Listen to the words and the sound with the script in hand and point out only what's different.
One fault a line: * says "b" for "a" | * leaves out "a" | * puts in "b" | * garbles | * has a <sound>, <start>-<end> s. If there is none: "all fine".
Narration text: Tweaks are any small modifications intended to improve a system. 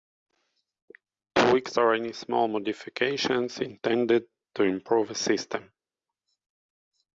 all fine